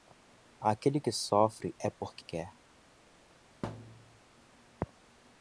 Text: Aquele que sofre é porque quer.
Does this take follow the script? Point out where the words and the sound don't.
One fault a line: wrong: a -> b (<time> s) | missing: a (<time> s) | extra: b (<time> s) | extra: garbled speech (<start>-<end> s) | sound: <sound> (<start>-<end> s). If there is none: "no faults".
sound: thud (3.6-4.2 s)